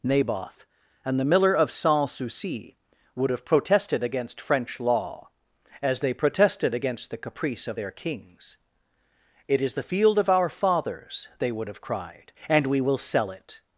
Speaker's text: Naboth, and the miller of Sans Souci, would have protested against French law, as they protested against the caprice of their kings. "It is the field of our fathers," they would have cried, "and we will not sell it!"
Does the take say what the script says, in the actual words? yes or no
no